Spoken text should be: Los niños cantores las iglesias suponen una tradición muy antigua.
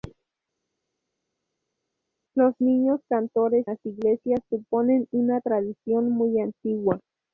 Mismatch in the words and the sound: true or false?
false